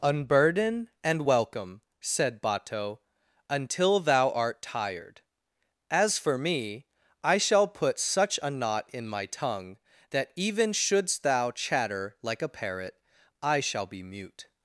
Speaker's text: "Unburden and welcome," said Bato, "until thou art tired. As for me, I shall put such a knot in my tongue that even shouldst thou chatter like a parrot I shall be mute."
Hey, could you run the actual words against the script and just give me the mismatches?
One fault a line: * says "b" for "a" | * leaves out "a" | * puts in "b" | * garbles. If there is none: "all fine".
all fine